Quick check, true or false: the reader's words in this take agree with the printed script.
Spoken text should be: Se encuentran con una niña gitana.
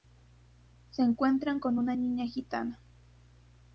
true